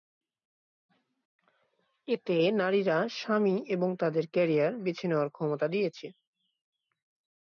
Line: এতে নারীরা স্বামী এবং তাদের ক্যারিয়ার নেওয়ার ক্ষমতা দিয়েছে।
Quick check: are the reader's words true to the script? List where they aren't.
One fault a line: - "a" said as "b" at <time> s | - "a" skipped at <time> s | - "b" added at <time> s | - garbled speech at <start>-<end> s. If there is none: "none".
- "বেছে" added at 4.8 s